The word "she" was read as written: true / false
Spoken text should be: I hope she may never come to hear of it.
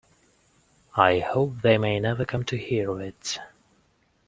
false